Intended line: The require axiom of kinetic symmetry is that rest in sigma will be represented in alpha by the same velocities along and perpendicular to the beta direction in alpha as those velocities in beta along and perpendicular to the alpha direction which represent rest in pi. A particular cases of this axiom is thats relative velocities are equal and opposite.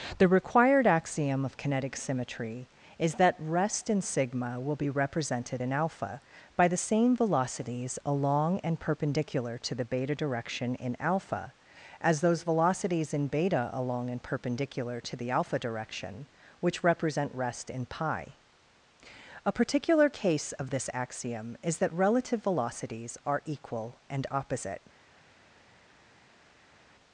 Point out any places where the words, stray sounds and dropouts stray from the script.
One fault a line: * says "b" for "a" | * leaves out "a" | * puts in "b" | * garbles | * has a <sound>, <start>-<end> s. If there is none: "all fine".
* says "required" for "require"
* says "case" for "cases"
* says "that" for "thats"